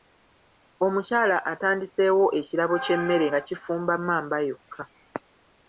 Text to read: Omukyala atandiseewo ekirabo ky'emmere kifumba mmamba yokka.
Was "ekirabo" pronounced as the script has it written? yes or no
yes